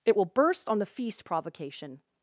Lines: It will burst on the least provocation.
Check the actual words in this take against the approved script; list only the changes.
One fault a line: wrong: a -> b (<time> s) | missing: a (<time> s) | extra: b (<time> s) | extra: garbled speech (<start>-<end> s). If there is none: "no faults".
wrong: least -> feast (0.9 s)